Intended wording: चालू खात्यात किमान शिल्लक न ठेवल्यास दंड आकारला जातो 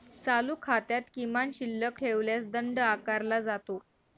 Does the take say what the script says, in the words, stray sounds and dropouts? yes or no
no